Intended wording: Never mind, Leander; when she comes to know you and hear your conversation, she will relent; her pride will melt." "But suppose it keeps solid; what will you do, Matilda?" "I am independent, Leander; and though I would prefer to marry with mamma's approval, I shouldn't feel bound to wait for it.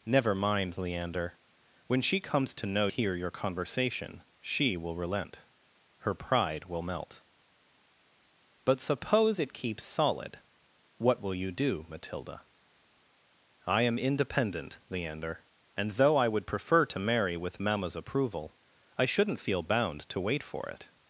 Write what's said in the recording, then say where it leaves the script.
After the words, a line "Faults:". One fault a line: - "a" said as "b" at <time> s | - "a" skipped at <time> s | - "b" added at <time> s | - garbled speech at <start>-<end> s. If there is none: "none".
Never mind, Leander; when she comes to know hear your conversation, she will relent; her pride will melt." "But suppose it keeps solid; what will you do, Matilda?" "I am independent, Leander; and though I would prefer to marry with mamma's approval, I shouldn't feel bound to wait for it.
Faults:
- "you and" skipped at 2.9 s